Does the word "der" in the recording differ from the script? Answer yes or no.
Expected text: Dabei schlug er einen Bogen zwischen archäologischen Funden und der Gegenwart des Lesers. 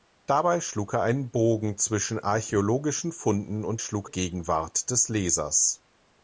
yes